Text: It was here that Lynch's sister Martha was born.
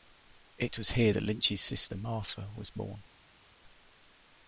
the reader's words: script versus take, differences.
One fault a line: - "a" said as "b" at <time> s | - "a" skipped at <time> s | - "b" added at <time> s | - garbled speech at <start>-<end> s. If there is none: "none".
none